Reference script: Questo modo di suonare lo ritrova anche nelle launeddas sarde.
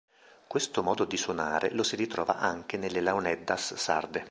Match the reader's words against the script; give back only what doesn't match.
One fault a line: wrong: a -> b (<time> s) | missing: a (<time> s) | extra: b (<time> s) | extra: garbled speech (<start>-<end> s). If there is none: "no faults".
extra: si (1.8 s)